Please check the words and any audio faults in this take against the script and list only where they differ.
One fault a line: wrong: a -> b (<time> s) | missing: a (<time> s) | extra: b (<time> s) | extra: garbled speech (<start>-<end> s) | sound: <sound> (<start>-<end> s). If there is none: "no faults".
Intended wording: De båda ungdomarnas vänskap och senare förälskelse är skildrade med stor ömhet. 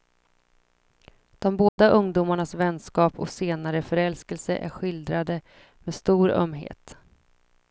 sound: dropout (1.7-1.8 s)